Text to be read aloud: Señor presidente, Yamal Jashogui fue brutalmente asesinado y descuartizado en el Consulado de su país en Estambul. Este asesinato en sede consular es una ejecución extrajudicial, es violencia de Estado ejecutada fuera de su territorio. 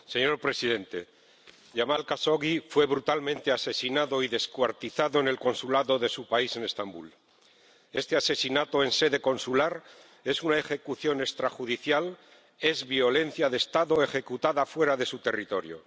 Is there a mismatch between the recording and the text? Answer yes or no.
no